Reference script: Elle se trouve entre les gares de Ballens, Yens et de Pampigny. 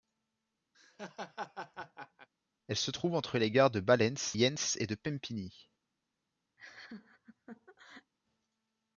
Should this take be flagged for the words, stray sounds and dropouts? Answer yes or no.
yes